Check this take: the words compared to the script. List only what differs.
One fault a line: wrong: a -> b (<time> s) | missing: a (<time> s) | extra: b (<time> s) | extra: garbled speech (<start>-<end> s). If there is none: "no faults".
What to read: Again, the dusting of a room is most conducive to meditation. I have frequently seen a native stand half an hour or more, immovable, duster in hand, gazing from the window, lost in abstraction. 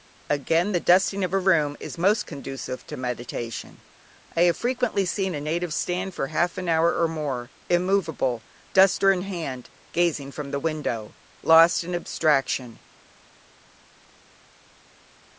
extra: for (6.1 s)